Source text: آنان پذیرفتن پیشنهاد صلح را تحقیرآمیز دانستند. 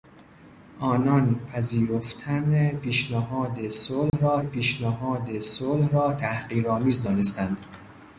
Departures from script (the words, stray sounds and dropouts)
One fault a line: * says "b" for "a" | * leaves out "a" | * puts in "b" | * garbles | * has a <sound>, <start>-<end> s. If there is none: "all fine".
* has a dropout, 4.1-4.1 s
* puts in "پیشنهاد صلح را"